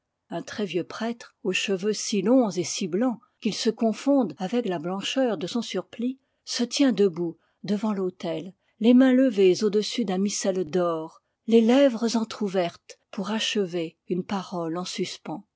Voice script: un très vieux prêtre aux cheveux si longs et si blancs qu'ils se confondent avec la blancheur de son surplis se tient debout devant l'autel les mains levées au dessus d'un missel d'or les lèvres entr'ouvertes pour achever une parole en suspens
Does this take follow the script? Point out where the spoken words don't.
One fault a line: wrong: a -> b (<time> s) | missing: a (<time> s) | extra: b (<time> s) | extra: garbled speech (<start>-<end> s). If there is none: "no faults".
no faults